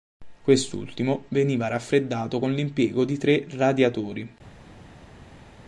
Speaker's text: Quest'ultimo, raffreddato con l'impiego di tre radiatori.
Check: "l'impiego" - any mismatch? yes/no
no